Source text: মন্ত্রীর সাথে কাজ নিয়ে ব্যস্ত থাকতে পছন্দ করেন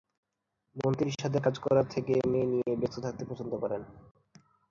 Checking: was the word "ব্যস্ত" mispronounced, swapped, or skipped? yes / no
no